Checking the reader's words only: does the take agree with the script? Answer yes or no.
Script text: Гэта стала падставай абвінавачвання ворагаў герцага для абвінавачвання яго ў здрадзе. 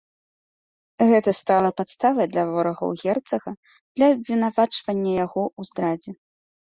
no